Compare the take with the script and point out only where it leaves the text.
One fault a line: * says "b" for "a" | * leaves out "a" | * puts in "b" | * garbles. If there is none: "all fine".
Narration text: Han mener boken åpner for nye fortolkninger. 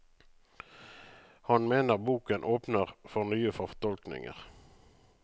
all fine